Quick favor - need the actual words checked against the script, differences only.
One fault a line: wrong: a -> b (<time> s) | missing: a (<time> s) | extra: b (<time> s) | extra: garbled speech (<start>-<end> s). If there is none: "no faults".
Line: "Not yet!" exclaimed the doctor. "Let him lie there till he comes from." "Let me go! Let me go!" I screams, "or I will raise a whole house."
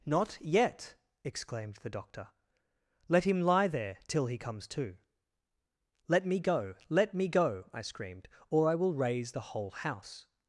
wrong: from -> to (4.7 s)
wrong: screams -> screamed (7.8 s)
wrong: a -> the (9.3 s)